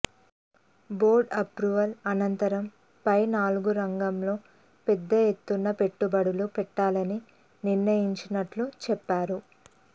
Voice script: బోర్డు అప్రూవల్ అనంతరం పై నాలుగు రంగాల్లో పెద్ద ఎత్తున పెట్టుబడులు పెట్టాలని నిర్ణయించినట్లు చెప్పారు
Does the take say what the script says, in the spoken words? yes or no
yes